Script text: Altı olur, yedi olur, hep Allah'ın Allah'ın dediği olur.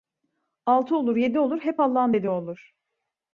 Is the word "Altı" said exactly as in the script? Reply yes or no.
yes